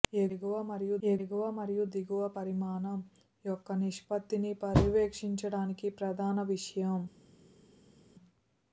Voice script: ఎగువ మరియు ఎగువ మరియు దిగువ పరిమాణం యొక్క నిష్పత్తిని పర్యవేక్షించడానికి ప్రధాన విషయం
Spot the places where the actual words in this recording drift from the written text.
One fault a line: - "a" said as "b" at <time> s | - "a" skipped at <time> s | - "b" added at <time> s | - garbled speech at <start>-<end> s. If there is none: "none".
none